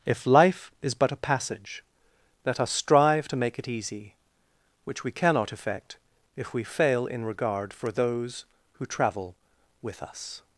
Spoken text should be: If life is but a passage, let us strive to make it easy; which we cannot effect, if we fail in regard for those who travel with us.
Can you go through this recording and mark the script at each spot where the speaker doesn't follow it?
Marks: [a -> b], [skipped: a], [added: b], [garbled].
If life is but a passage, let us strive to make it easy; which we cannot effect, if we fail in regard for those who travel with us.